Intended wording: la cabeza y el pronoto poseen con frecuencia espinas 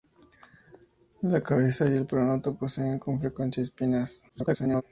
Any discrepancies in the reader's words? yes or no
yes